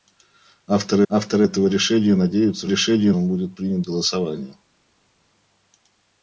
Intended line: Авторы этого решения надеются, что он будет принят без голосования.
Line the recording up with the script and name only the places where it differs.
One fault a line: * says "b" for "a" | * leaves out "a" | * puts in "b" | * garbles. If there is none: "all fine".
* puts in "авторы"
* says "решения" for "что"
* leaves out "без"